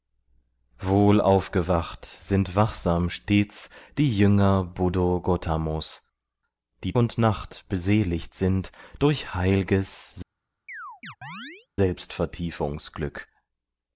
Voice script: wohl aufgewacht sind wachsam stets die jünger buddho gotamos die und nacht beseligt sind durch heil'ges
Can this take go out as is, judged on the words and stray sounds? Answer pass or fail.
fail